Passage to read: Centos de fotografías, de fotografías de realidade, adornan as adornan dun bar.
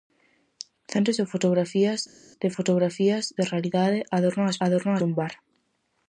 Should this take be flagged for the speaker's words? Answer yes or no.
no